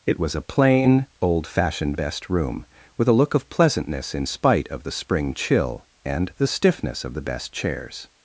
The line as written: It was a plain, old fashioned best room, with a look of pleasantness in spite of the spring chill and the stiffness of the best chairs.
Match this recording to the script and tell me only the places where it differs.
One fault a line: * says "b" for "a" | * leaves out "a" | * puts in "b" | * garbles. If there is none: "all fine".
all fine